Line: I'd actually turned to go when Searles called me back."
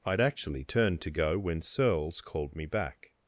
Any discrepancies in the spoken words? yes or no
no